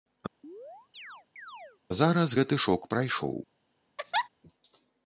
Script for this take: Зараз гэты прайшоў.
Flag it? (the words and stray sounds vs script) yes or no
yes